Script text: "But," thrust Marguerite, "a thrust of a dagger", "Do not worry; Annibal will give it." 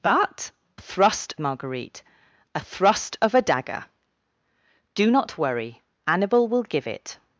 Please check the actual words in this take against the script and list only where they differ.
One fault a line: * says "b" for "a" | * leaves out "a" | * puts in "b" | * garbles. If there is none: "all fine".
all fine